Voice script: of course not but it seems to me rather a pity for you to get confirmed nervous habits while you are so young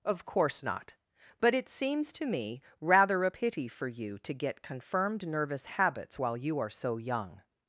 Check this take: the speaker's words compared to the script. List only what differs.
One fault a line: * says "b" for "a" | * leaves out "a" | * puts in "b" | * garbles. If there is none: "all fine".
all fine